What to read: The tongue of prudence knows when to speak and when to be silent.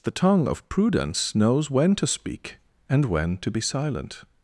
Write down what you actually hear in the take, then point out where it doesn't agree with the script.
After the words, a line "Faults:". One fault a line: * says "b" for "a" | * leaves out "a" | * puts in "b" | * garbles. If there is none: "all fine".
The tongue of prudence knows when to speak and when to be silent.
Faults:
all fine